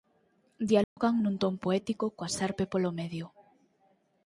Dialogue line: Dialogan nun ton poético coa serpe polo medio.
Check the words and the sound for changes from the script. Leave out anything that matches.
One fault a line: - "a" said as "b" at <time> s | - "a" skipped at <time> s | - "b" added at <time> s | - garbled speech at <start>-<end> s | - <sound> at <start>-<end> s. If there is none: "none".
- dropout at 0.8-1.0 s